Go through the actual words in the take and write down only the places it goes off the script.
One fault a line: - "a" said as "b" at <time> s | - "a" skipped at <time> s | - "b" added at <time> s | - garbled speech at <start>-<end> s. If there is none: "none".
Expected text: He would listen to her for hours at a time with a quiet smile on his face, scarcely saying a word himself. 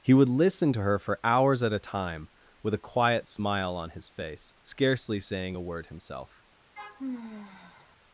none